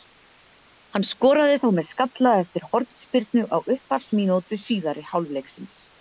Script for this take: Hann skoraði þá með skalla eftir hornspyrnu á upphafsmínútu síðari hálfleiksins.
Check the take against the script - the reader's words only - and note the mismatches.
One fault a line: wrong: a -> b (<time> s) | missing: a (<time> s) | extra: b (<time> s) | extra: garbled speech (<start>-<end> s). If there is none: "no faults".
no faults